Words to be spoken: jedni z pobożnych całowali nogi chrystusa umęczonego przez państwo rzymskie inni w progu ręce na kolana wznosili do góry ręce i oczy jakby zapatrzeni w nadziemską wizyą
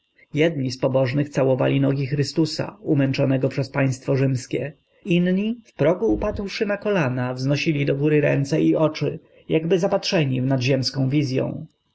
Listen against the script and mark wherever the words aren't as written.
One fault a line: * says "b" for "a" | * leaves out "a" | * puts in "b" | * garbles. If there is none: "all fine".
* says "upadłszy" for "ręce"